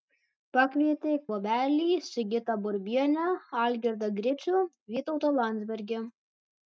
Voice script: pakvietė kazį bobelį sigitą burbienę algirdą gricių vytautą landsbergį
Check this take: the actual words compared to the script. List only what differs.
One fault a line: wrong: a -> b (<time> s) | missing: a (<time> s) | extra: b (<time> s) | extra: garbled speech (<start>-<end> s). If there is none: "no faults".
missing: kazį (1.1 s)